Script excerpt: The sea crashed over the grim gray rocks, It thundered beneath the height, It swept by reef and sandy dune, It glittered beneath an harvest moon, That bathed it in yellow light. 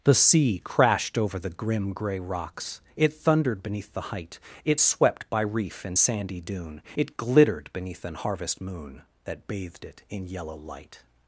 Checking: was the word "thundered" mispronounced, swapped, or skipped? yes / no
no